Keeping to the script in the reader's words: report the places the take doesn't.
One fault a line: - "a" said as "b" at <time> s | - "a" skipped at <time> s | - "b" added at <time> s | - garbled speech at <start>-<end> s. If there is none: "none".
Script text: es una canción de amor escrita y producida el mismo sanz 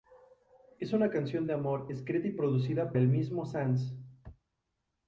none